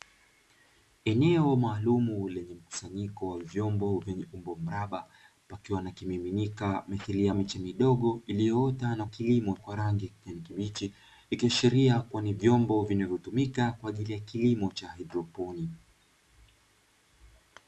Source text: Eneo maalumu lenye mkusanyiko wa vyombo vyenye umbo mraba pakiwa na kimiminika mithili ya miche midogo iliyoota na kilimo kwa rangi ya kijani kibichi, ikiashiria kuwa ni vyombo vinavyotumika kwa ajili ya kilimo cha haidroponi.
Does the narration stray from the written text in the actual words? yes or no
no